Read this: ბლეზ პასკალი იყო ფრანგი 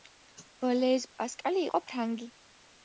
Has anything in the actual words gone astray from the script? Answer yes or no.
no